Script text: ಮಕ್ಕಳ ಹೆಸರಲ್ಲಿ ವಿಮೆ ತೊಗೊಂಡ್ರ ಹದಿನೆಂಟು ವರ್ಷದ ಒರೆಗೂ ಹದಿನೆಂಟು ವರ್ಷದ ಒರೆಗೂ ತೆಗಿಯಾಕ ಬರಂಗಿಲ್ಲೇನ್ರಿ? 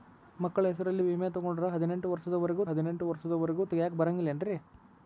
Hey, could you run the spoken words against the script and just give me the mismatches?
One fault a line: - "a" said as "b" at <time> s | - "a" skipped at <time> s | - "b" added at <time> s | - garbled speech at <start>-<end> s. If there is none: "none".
none